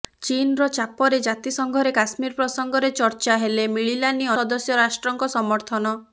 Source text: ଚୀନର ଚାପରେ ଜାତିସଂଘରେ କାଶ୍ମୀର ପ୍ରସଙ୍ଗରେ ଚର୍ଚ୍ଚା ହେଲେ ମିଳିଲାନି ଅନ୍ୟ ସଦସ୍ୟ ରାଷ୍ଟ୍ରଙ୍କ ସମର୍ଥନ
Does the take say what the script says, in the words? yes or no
no